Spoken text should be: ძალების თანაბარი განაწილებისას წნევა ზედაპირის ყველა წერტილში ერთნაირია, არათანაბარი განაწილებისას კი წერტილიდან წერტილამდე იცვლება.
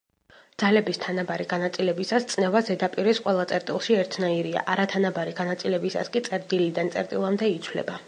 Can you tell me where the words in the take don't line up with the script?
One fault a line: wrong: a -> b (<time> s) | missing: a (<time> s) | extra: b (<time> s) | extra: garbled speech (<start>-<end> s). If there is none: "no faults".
no faults